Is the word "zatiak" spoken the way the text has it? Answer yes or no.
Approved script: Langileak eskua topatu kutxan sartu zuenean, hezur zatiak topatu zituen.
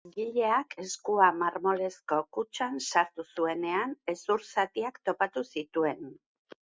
yes